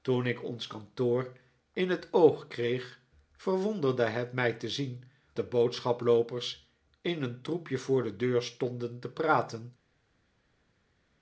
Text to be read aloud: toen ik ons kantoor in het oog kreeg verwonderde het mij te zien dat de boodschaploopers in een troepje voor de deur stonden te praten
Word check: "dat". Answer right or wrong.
wrong